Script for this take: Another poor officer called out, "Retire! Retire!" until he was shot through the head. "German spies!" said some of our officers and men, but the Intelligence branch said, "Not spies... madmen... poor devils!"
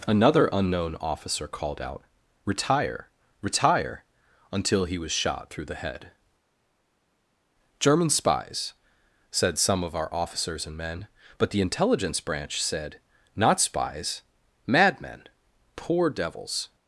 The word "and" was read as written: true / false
true